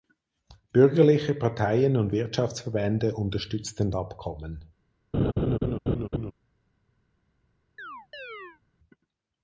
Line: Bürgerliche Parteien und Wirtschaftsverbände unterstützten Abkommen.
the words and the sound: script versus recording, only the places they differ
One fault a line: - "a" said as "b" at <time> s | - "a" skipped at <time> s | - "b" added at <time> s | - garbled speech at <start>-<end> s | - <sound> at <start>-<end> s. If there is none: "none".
- laugh at 5.1-6.3 s
- chirp at 7.8-8.6 s